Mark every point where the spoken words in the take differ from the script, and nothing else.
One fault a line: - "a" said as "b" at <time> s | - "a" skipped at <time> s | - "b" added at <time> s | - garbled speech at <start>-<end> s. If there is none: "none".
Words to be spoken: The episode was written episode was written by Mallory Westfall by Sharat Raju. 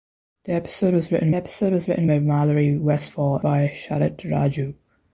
none